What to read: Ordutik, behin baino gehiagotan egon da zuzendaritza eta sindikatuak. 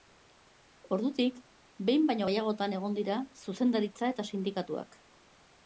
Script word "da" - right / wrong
wrong